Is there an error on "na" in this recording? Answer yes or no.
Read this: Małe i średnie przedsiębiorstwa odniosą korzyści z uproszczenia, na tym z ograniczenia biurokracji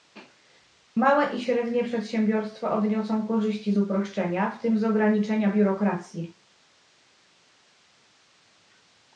yes